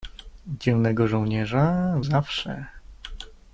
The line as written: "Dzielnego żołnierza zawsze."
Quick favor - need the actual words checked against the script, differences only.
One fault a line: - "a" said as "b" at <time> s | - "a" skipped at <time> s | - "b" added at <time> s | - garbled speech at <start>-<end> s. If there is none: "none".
none